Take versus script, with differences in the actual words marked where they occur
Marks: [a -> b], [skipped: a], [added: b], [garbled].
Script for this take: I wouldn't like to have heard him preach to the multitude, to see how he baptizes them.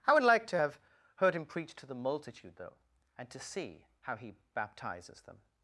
I [wouldn't -> would] like to have heard him preach to the multitude, [added: though and] to see how he baptizes them.